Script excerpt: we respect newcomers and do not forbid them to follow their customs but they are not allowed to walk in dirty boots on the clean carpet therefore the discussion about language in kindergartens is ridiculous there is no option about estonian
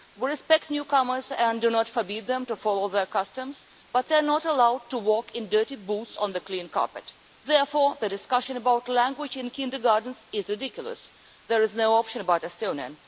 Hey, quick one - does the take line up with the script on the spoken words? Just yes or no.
yes